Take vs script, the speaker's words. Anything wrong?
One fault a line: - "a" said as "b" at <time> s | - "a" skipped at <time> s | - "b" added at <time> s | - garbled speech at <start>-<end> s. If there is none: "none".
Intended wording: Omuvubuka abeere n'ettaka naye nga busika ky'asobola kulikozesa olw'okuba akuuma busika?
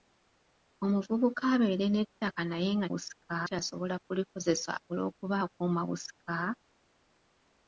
none